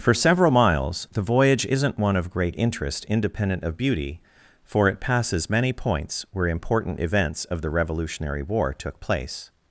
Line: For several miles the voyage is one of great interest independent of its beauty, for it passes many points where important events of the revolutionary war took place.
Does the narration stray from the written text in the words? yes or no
yes